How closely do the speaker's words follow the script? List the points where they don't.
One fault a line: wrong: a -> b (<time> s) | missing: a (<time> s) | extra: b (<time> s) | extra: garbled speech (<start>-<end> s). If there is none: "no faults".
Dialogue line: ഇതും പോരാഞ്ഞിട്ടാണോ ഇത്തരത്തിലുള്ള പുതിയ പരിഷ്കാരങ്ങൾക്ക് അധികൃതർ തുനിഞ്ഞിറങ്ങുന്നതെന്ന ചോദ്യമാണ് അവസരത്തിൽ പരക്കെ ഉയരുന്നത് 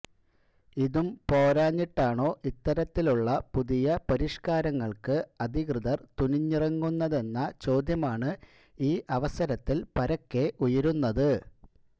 extra: ഈ (8.8 s)